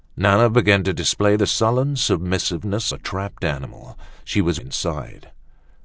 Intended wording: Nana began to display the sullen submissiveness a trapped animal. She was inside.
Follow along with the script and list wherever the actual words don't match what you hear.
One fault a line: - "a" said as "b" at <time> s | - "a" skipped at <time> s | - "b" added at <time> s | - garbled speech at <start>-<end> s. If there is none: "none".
none